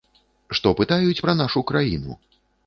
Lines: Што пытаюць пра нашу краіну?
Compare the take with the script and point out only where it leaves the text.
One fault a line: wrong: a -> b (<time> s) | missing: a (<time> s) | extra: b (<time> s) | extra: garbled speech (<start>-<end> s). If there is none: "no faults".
no faults